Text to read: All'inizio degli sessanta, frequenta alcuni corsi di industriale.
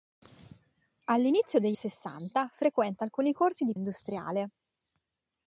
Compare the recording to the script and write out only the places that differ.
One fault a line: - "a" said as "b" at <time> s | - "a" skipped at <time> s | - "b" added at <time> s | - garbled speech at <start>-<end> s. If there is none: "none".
none